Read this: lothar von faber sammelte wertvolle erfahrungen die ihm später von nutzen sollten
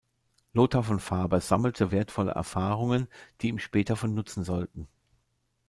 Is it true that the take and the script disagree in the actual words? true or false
false